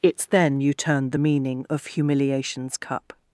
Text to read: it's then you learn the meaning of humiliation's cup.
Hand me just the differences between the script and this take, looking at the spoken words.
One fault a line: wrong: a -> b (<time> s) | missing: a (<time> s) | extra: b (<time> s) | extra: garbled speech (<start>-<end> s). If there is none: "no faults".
wrong: learn -> turn (0.7 s)